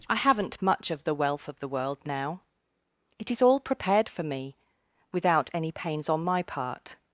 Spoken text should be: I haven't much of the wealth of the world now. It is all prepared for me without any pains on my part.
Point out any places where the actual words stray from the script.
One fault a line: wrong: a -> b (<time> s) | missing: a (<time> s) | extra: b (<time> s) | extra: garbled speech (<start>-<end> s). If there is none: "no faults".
no faults